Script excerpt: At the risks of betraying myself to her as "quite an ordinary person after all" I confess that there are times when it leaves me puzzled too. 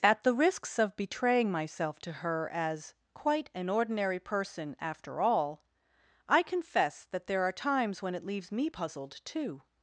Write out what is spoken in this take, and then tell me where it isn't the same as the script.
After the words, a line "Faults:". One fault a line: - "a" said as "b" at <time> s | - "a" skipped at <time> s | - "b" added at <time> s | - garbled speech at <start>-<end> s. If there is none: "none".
At the risks of betraying myself to her as "quite an ordinary person after all" I confess that there are times when it leaves me puzzled too.
Faults:
none